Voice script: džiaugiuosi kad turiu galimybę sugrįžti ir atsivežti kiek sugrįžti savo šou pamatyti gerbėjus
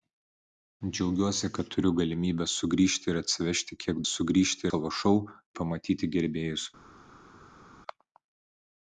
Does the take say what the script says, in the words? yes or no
yes